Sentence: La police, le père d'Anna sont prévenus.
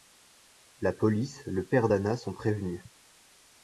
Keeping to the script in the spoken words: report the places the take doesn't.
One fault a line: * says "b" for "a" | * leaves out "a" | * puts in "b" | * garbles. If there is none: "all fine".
all fine